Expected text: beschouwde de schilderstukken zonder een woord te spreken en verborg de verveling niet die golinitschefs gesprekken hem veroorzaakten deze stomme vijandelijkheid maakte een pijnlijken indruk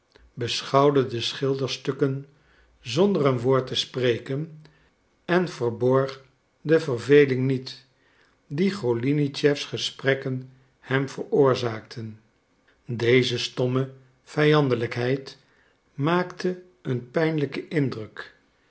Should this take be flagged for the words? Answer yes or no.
no